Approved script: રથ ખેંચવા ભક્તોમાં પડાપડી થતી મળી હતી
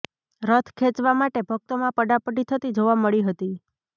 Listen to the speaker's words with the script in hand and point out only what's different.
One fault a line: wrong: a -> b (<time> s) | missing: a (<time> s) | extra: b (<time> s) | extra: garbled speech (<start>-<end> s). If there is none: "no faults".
extra: માટે (1.1 s)
extra: જોવા (2.8 s)